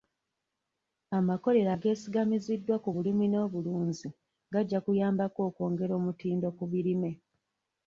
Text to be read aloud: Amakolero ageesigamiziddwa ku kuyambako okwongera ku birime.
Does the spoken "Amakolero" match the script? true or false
true